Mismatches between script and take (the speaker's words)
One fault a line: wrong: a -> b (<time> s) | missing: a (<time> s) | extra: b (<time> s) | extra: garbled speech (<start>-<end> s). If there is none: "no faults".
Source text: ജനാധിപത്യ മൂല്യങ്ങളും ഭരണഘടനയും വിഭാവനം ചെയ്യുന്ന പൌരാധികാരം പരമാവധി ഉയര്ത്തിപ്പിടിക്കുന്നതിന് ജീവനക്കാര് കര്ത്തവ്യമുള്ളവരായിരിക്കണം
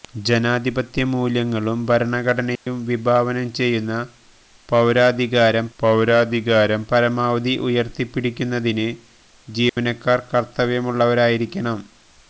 extra: പൌരാധികാരം (5.8 s)